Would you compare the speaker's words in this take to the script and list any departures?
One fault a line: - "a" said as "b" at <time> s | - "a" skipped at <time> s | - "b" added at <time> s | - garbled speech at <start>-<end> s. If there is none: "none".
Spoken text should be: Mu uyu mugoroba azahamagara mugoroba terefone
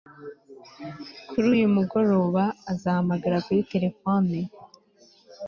- "Mu" said as "Kuri" at 1.3 s
- "mugoroba" said as "kuri" at 3.5 s